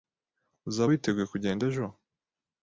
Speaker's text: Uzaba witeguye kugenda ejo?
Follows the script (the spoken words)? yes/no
yes